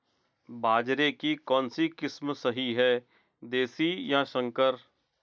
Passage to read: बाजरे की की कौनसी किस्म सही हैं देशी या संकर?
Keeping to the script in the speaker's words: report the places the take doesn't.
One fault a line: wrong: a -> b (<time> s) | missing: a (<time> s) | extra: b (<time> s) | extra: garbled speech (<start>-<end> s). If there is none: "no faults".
missing: की (1.4 s)